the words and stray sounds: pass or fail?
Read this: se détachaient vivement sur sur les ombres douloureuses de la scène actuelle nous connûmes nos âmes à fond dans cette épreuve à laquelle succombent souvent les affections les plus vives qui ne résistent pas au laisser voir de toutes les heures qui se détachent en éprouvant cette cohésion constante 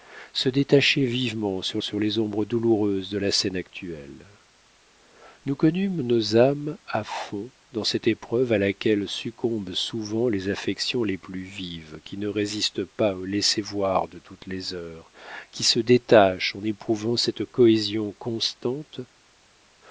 pass